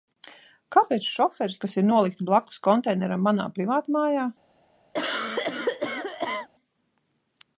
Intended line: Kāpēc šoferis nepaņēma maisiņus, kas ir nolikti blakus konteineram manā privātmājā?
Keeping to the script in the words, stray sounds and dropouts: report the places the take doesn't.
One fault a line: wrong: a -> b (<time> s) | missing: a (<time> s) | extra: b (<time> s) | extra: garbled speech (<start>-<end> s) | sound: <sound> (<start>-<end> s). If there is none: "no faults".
missing: nepaņēma maisiņus (1.6 s)
sound: cough (4.9-6.5 s)